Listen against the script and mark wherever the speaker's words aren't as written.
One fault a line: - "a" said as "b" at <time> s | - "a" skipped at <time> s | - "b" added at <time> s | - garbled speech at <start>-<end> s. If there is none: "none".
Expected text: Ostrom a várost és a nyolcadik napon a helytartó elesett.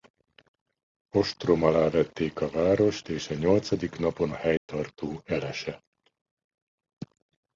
- "alá vették" added at 1.6 s